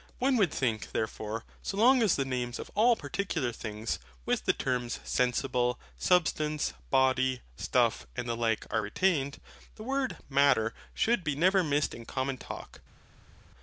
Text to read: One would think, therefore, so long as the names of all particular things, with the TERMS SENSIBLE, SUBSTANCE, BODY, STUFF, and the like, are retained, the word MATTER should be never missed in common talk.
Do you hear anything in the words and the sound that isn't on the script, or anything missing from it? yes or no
no